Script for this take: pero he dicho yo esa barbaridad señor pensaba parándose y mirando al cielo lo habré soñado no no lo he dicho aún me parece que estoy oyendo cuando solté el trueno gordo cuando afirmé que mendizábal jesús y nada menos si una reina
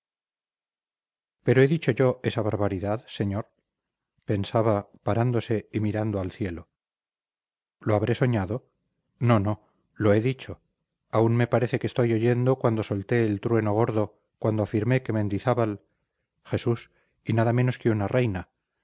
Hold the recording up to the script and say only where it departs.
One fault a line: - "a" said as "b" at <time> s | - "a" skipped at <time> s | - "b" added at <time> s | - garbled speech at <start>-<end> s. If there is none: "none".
- "si" said as "que" at 17.8 s